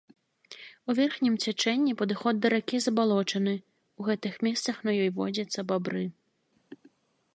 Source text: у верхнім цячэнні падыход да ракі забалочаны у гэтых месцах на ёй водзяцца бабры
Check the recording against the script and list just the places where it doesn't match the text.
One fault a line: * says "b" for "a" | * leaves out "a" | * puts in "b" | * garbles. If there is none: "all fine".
all fine